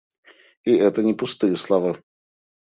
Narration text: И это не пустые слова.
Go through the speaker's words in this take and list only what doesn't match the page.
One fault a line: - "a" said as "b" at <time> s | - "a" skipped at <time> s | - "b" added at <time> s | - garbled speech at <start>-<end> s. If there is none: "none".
none